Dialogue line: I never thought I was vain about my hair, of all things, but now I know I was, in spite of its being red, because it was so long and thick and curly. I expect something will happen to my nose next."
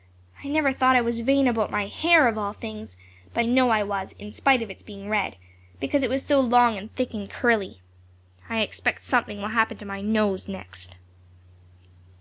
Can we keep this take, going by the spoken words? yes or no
no